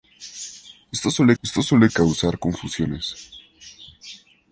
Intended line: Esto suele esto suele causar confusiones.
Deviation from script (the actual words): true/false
false